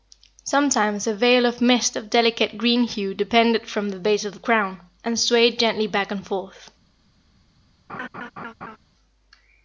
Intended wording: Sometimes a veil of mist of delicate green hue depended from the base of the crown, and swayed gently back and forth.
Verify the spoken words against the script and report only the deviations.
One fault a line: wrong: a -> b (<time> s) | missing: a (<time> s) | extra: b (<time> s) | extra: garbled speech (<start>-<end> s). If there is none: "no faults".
no faults